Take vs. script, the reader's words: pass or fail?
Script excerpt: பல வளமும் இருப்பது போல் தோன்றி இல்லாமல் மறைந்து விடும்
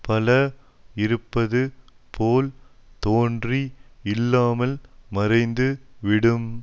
fail